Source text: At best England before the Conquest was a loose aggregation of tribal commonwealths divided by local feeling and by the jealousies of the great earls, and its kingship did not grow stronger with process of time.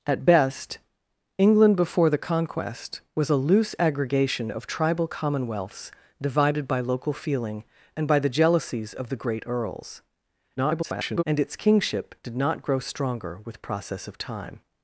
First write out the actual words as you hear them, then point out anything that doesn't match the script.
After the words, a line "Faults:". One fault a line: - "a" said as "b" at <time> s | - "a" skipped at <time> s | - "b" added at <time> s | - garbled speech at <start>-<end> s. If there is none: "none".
At best England before the Conquest was a loose aggregation of tribal commonwealths divided by local feeling and by the jealousies of the great earls, [garbled] and its kingship did not grow stronger with process of time.
Faults:
- garbled speech at 10.6-11.2 s